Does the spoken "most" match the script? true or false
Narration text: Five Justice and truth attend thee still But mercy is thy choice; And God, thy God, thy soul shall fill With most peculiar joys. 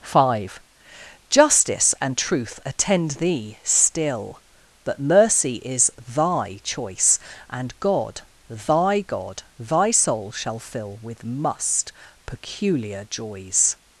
false